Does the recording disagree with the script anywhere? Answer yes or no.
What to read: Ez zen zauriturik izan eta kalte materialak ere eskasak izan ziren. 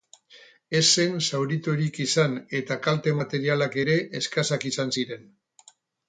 no